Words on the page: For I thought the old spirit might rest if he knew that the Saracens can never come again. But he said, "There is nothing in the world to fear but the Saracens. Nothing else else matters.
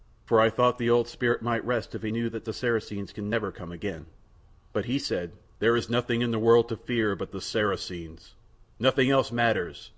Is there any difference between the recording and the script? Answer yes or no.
yes